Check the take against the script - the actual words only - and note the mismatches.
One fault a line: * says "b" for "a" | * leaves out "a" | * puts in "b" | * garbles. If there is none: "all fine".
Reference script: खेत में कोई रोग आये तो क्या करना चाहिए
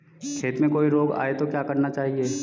all fine